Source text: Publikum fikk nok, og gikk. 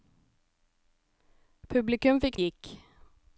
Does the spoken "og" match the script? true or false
false